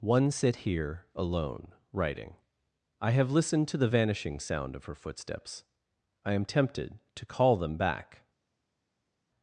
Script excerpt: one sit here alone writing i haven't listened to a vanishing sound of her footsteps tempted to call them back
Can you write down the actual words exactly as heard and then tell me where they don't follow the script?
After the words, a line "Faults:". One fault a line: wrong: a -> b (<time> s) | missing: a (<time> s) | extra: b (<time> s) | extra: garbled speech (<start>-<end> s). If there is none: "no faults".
one sit here alone writing i have listened to the vanishing sound of her footsteps i am tempted to call them back
Faults:
wrong: haven't -> have (3.1 s)
wrong: a -> the (3.8 s)
extra: i am (6.2 s)